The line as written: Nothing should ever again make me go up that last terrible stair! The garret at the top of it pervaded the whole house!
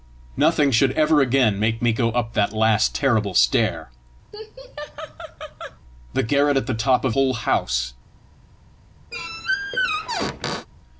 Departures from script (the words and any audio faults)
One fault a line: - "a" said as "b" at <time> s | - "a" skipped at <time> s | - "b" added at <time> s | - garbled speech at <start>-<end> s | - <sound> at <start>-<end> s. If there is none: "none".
- laugh at 4.3-5.8 s
- "it pervaded the" skipped at 7.2 s
- squeak at 9.1-10.7 s